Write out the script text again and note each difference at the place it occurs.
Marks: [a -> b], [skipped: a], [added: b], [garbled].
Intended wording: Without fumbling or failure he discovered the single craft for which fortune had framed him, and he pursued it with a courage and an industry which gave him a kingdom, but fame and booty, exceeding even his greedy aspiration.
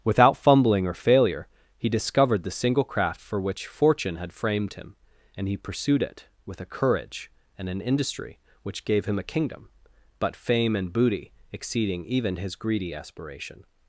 Without fumbling or failure he discovered the single craft for which fortune had framed him, and he pursued it with a courage and an industry which gave him a kingdom, but fame and booty, exceeding even his greedy aspiration.